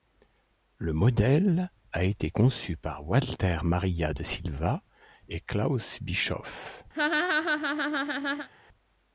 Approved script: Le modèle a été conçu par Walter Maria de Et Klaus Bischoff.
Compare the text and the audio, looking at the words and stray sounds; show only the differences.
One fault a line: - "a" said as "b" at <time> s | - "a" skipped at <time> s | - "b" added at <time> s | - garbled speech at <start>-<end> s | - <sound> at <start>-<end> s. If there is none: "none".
- "Silva" added at 4.2 s
- laugh at 6.9-8.5 s